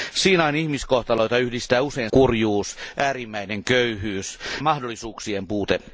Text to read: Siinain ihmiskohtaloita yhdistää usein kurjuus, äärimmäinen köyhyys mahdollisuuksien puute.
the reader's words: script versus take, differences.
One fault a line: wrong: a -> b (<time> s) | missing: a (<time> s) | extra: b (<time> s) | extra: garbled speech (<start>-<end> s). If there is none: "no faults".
no faults